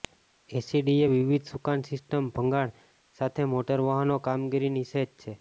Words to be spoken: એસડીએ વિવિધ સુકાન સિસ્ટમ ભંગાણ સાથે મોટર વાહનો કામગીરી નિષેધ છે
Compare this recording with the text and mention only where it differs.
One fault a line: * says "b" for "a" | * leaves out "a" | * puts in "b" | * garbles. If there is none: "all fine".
all fine